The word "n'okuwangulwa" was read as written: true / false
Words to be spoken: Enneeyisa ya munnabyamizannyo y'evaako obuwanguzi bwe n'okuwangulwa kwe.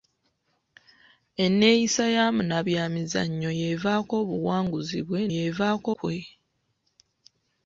false